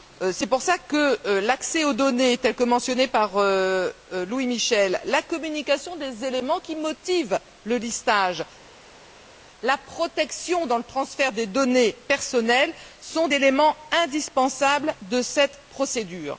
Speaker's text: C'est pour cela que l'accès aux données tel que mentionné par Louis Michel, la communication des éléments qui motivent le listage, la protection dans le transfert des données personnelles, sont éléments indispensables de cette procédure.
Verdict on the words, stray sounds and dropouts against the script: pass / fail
pass